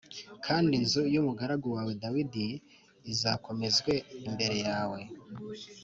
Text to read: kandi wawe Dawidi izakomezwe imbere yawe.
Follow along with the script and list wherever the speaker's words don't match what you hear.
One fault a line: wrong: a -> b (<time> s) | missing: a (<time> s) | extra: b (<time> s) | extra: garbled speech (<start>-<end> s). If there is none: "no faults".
extra: inzu y'umugaragu (0.8 s)